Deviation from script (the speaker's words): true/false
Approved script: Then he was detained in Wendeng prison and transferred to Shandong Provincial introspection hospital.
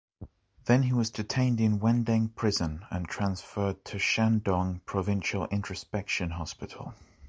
false